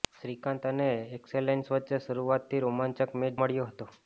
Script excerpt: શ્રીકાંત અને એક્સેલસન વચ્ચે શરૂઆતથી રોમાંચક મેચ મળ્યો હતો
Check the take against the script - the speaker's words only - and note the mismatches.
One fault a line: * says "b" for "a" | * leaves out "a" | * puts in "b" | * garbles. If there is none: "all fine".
all fine